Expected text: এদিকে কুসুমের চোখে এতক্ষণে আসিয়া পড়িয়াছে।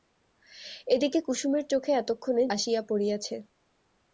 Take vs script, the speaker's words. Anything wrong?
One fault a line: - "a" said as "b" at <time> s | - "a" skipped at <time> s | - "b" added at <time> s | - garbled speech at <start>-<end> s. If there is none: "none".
none